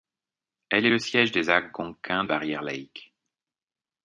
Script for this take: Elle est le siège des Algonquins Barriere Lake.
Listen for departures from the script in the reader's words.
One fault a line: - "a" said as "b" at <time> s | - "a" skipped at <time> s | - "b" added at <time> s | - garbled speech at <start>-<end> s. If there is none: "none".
none